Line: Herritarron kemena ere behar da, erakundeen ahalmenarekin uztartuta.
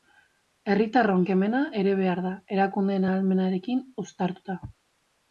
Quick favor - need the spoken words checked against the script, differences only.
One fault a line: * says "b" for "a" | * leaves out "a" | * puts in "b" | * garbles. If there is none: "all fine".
all fine